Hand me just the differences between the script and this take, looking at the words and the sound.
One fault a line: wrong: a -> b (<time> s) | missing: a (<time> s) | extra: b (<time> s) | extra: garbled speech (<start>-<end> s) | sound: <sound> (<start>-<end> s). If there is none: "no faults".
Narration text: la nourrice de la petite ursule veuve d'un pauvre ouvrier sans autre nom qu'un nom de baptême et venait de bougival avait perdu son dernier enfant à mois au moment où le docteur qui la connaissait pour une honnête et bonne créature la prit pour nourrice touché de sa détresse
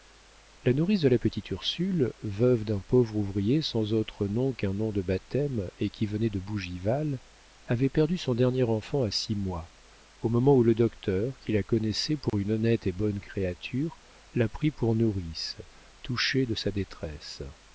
extra: qui (5.9 s)
extra: six (9.1 s)
sound: dropout (12.3-12.3 s)